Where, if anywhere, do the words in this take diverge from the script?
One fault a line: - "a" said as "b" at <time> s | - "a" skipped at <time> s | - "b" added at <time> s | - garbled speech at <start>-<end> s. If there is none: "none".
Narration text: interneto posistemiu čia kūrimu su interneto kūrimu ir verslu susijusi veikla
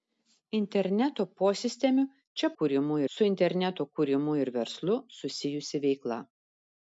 none